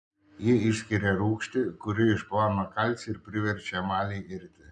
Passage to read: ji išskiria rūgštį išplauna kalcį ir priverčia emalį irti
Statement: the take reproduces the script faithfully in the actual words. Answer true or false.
false